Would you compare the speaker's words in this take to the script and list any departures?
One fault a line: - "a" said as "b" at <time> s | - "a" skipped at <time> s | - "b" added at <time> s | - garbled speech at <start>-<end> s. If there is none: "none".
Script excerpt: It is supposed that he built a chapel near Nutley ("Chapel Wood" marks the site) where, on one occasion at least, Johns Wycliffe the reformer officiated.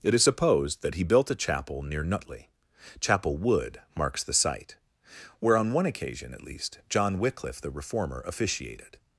- "Johns" said as "John" at 6.9 s